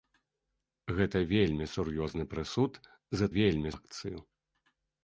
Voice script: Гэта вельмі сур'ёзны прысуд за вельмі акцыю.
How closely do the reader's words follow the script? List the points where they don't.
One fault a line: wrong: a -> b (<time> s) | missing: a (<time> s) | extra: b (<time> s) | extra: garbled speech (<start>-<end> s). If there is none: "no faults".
no faults